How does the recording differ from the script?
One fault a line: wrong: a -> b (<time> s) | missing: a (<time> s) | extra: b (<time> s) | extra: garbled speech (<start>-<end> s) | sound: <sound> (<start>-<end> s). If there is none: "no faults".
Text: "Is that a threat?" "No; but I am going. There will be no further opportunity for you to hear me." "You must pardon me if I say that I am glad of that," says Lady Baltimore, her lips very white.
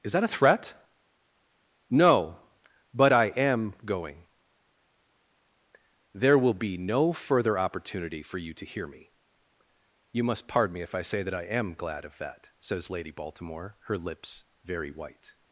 no faults